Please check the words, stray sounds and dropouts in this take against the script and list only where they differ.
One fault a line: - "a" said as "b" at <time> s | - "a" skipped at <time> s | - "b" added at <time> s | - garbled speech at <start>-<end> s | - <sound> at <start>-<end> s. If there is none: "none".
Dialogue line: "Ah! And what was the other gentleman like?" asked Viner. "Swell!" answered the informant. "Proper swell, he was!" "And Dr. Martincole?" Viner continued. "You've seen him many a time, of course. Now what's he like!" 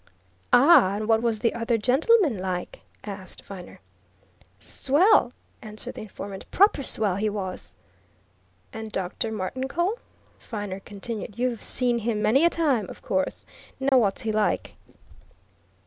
- dropout at 13.9-13.9 s